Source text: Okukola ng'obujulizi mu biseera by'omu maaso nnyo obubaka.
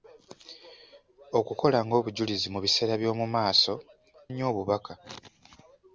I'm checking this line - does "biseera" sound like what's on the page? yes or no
yes